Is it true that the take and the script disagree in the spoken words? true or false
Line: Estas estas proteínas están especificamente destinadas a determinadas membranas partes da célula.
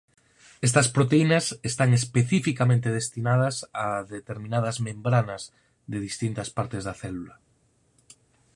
true